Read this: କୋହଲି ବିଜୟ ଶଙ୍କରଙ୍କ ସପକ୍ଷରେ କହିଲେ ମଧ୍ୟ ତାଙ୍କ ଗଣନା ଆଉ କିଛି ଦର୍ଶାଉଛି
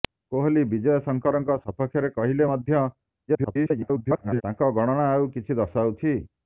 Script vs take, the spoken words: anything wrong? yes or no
yes